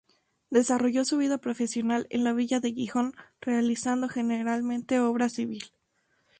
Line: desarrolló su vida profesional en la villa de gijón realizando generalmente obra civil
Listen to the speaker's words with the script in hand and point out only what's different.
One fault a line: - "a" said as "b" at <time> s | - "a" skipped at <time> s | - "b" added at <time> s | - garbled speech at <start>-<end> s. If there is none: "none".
none